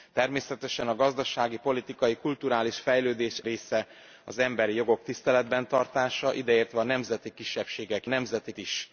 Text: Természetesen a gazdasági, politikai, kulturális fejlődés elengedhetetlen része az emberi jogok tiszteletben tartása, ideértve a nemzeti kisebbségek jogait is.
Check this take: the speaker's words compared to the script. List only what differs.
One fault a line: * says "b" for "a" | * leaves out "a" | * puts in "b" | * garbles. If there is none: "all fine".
* leaves out "elengedhetetlen"
* says "nemzeti" for "jogait"